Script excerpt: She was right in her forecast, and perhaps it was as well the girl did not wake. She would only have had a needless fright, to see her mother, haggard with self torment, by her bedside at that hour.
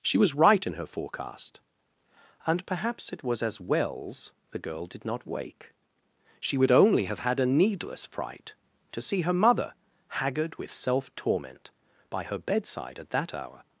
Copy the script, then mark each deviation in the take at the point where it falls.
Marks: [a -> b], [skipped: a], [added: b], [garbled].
She was right in her forecast, and perhaps it was as [well -> wells] the girl did not wake. She would only have had a needless fright, to see her mother, haggard with self torment, by her bedside at that hour.